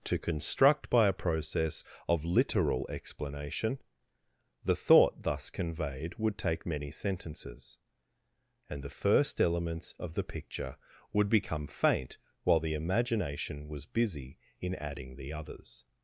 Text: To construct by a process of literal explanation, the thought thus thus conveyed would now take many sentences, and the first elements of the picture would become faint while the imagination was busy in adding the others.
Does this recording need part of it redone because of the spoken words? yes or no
yes